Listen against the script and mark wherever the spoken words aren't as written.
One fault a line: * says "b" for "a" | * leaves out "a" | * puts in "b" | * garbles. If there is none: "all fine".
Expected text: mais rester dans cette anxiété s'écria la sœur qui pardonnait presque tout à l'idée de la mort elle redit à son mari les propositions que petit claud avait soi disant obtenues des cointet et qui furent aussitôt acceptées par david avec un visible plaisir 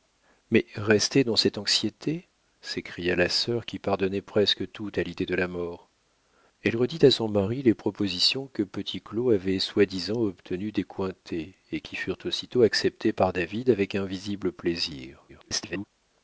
* garbles